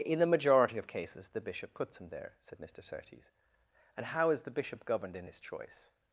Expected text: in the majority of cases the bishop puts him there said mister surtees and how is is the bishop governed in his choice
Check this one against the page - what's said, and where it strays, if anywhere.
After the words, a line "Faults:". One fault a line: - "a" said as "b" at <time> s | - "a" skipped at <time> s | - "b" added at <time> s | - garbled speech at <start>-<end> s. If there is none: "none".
in the majority of cases the bishop puts him there said mister surtees and how is the bishop governed in his choice
Faults:
- "is" skipped at 4.4 s